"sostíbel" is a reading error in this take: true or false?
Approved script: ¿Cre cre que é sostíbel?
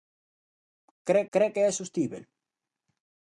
false